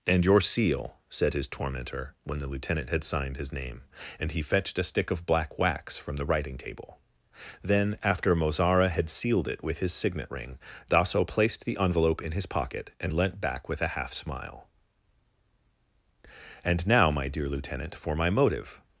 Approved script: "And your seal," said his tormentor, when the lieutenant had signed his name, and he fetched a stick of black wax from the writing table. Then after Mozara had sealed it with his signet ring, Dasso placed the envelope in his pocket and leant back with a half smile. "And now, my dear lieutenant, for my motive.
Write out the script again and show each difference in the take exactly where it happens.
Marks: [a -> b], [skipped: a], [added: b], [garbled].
"And your seal," said his tormentor, when the lieutenant had signed his name, and he fetched a stick of black wax from the writing table. Then after Mozara had sealed it with his signet ring, Dasso placed the envelope in his pocket and leant back with a half smile. "And now, my dear lieutenant, for my motive.